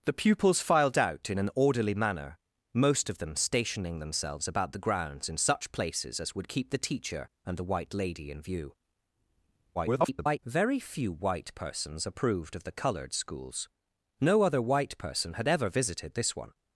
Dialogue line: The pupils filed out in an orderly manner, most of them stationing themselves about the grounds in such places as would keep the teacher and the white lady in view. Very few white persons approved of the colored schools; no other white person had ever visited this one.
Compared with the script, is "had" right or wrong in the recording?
right